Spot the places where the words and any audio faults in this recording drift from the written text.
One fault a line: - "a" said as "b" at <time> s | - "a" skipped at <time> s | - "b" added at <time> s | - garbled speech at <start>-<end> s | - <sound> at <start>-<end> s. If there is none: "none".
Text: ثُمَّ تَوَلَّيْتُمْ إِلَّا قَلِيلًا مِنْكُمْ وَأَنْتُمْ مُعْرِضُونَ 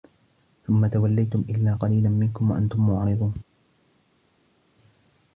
none